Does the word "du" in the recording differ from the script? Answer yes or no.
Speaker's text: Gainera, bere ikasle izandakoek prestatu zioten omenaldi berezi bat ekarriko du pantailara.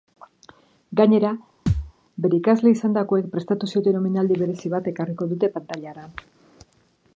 yes